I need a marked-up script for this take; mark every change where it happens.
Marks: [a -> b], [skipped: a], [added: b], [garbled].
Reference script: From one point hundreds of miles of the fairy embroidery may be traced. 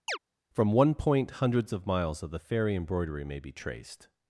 From one point hundreds of miles of the fairy embroidery may be traced.